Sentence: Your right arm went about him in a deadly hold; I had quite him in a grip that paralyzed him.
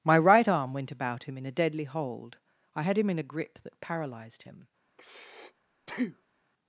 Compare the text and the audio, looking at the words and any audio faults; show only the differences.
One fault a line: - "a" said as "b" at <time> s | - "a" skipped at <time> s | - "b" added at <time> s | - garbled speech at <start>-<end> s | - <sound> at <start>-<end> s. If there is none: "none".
- "Your" said as "My" at 0.0 s
- "quite" skipped at 3.0 s
- breath at 4.9-6.4 s